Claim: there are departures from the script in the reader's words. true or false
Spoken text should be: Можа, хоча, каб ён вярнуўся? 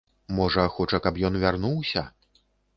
false